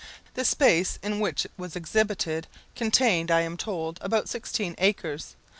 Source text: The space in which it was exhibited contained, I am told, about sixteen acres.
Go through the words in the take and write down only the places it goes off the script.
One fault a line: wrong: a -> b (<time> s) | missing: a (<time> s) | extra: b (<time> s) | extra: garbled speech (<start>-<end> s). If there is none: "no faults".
no faults